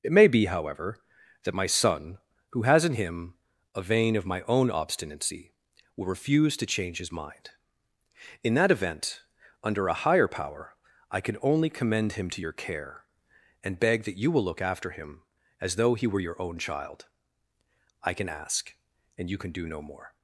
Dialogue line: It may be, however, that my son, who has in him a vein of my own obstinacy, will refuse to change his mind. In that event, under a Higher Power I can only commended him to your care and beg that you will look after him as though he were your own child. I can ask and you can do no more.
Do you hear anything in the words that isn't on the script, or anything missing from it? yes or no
yes